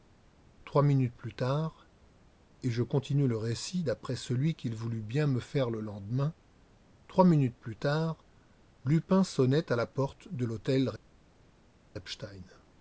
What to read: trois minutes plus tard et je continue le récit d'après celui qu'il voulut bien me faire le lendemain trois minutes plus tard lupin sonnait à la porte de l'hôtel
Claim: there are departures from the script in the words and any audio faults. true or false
false